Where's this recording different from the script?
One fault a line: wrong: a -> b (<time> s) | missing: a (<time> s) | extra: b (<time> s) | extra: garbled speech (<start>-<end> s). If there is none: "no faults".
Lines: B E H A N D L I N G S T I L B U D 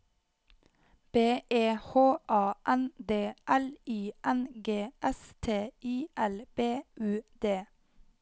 no faults